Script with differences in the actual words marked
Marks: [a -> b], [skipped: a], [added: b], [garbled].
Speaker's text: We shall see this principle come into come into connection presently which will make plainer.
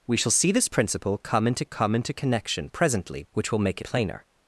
We shall see this principle come into come into connection presently which will make plainer.